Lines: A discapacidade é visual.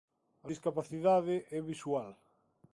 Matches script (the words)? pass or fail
pass